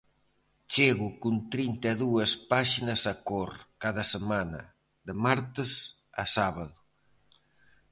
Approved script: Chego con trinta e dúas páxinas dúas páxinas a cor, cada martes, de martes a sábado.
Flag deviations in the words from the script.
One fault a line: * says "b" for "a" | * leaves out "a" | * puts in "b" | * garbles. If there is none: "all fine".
* leaves out "dúas páxinas"
* says "semana" for "martes"